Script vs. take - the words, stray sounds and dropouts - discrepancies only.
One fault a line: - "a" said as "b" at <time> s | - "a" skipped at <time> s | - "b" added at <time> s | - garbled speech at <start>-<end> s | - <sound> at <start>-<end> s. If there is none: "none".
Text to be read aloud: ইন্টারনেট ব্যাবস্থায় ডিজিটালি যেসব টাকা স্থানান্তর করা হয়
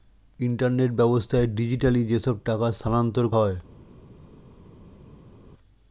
- "করা" skipped at 3.2 s